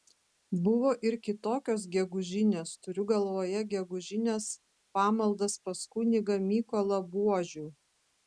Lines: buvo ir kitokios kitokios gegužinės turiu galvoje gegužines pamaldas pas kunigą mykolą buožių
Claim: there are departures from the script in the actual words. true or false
true